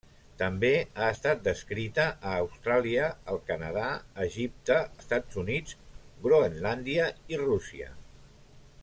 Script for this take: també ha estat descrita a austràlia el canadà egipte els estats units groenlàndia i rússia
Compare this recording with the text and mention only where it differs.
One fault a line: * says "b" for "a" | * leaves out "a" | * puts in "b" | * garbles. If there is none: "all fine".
* leaves out "els"